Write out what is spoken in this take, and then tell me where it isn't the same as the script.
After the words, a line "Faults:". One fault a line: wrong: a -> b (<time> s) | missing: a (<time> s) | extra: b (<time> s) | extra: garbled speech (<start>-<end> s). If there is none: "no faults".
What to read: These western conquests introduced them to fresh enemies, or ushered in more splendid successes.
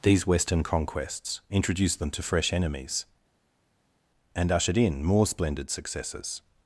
These western conquests introduced them to fresh enemies, and ushered in more splendid successes.
Faults:
wrong: or -> and (4.3 s)